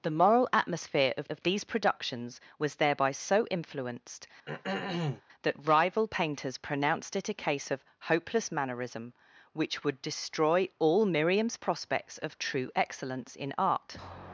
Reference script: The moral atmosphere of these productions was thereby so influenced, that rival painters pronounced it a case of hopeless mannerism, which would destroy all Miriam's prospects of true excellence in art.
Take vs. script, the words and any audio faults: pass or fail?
fail